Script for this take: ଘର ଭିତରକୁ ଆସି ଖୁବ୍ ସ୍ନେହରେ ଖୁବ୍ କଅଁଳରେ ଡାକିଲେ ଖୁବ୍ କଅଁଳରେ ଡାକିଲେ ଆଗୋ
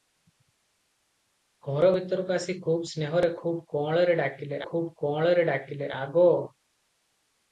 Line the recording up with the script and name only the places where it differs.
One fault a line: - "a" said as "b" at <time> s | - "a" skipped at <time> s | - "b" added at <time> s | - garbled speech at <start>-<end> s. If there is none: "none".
none